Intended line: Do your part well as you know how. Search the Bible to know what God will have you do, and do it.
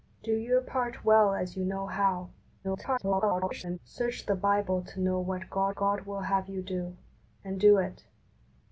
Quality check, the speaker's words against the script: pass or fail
fail